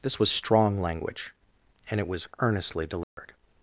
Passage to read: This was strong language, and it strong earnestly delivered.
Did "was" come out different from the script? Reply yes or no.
no